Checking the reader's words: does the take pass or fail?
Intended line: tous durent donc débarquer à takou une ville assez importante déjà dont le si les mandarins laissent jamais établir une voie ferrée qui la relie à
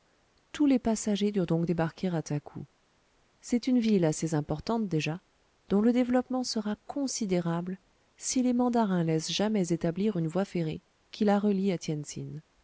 fail